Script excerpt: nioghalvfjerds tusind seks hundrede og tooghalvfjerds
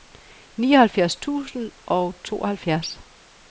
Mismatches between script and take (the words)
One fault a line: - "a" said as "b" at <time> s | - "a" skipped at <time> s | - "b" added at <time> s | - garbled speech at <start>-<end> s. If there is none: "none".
- "seks hundrede" skipped at 1.7 s